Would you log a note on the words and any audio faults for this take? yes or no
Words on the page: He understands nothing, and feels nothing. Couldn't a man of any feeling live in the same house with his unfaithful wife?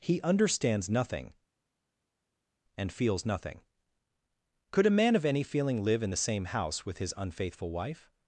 yes